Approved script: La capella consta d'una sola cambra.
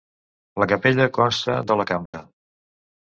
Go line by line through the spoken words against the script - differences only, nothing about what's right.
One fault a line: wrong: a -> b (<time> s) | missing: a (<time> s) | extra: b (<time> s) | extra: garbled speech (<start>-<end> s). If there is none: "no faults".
missing: d'una (1.6 s)